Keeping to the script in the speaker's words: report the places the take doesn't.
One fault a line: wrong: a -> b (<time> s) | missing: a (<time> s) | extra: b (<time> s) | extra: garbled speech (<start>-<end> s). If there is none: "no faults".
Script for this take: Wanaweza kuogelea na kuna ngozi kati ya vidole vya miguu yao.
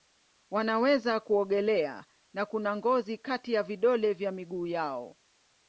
no faults